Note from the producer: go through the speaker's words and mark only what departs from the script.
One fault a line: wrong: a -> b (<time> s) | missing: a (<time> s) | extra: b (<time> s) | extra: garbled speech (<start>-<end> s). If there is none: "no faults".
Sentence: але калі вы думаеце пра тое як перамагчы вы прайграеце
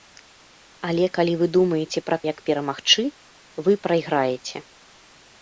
missing: тое (2.2 s)